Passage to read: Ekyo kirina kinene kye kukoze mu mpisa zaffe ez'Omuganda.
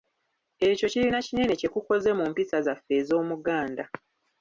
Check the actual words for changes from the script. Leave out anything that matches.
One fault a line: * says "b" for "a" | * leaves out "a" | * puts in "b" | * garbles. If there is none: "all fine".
all fine